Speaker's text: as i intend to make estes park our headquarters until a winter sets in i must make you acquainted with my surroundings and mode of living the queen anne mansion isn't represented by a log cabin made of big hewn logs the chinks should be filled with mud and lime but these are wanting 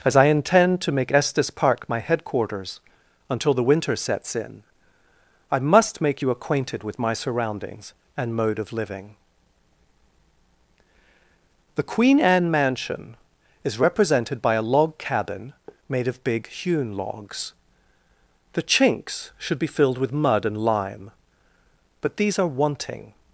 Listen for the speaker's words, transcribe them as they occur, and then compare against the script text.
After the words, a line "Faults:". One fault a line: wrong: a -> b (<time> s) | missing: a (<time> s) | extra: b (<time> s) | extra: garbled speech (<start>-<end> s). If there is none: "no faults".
as i intend to make estes park my headquarters until the winter sets in i must make you acquainted with my surroundings and mode of living the queen anne mansion is represented by a log cabin made of big hewn logs the chinks should be filled with mud and lime but these are wanting
Faults:
wrong: our -> my (1.9 s)
wrong: a -> the (3.5 s)
wrong: isn't -> is (13.7 s)